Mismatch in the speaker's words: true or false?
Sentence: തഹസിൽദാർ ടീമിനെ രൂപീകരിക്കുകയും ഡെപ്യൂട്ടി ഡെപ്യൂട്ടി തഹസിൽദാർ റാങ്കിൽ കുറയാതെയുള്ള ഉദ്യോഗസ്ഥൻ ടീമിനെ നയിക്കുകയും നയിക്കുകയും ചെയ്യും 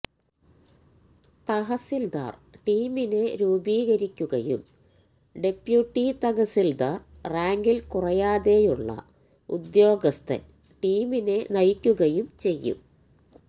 true